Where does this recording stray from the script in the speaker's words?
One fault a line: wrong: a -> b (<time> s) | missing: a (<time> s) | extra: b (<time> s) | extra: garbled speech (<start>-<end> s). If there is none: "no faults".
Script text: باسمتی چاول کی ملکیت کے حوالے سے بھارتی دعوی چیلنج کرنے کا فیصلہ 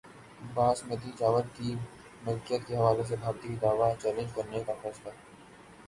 no faults